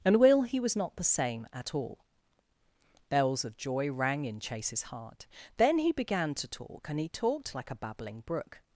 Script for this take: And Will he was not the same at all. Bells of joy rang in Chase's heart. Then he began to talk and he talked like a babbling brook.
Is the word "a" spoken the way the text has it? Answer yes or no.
yes